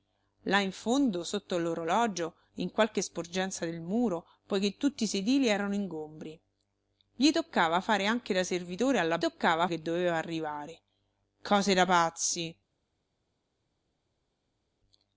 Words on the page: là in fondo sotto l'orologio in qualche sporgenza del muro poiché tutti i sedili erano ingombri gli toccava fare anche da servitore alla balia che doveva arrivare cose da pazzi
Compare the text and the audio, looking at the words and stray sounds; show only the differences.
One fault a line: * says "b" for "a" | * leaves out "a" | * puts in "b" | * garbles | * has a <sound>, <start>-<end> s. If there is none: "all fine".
* says "toccava" for "balia"